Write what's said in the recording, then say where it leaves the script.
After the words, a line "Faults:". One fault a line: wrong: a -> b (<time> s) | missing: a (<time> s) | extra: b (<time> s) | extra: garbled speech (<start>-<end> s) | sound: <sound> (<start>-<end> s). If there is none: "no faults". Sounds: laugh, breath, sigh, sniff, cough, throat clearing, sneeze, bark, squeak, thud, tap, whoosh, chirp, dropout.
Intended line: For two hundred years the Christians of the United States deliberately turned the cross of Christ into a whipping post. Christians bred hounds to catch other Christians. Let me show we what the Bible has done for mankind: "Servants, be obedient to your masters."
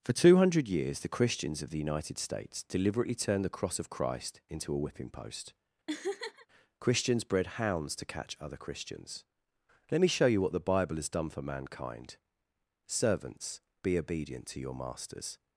For two hundred years the Christians of the United States deliberately turned the cross of Christ into a whipping post. Christians bred hounds to catch other Christians. Let me show you what the Bible has done for mankind: "Servants, be obedient to your masters."
Faults:
sound: laugh (5.9-6.5 s)
wrong: we -> you (10.3 s)